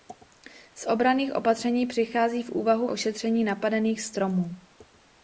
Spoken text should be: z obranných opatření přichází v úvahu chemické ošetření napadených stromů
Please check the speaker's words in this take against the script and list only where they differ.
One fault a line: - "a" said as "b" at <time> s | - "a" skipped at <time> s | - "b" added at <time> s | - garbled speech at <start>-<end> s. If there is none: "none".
- "chemické" skipped at 2.9 s